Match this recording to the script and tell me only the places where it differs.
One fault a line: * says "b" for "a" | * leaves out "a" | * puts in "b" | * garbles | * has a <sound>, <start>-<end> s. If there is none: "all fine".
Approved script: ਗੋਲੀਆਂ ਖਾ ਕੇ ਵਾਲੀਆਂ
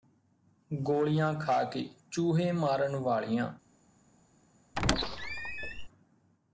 * puts in "ਚੂਹੇ ਮਾਰਨ"
* has a squeak, 4.8-5.9 s